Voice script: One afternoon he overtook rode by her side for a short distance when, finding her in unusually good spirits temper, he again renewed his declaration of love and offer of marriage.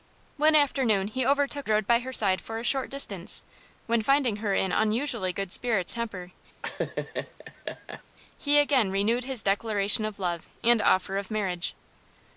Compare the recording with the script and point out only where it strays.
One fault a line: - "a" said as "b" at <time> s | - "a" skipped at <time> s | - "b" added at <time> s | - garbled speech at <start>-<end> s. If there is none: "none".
none